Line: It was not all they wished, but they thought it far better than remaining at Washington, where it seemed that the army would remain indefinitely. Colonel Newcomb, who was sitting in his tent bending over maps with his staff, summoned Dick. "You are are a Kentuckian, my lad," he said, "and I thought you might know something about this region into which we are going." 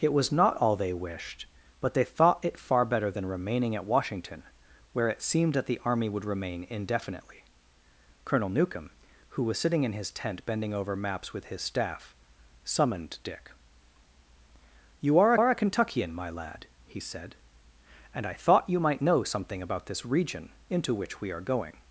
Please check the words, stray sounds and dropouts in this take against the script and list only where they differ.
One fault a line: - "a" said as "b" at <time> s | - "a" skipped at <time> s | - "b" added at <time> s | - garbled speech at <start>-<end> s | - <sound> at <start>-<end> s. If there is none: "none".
none